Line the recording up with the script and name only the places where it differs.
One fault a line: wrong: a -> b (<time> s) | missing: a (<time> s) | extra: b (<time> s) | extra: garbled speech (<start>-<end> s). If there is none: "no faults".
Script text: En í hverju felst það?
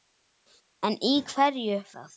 missing: felst (1.8 s)